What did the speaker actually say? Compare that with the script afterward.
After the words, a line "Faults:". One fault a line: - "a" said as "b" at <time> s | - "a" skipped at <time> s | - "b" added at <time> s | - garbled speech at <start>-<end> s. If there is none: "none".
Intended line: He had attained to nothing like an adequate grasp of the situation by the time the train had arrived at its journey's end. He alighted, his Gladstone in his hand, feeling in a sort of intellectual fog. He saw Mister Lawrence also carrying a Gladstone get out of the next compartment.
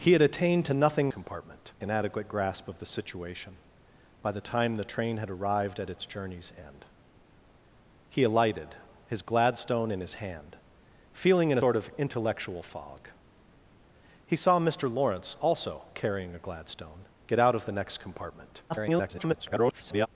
He had attained to nothing compartment an adequate grasp of the situation by the time the train had arrived at its journey's end. He alighted, his Gladstone in his hand, feeling in sort of intellectual fog. He saw Mister Lawrence also carrying a Gladstone get out of the next compartment. [garbled]
Faults:
- "like" said as "compartment" at 1.1 s
- "a" skipped at 11.6 s
- garbled speech at 18.7-20.1 s